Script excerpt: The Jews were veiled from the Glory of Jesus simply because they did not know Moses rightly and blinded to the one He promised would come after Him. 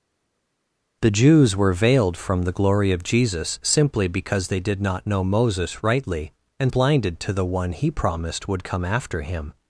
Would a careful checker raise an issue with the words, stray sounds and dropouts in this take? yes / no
no